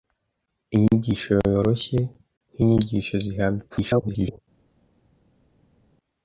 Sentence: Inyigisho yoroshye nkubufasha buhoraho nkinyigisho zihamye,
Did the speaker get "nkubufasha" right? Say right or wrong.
wrong